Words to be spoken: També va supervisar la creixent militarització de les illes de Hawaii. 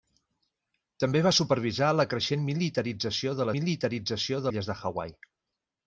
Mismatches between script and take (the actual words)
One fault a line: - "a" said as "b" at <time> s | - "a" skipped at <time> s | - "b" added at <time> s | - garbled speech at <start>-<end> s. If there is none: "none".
- "les" said as "militarització" at 3.6 s